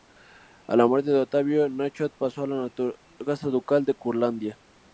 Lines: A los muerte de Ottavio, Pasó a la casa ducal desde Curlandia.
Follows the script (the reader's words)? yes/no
no